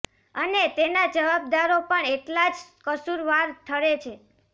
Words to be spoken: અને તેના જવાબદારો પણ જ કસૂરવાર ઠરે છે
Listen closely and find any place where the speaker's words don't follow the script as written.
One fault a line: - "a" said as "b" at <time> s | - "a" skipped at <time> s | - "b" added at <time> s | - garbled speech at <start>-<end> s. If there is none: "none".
- "એટલા" added at 2.1 s